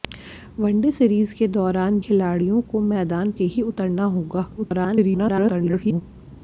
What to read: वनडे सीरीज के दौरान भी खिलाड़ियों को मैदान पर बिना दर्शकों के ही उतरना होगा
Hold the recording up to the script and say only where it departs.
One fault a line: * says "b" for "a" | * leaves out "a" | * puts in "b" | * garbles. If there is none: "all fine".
* leaves out "भी"
* leaves out "पर बिना दर्शकों"
* garbles